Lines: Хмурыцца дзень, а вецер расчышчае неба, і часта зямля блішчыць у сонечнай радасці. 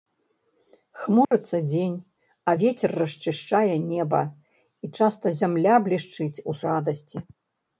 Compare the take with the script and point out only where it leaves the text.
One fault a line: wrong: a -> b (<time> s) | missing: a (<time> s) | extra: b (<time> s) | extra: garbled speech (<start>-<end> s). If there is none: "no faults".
missing: сонечнай (6.6 s)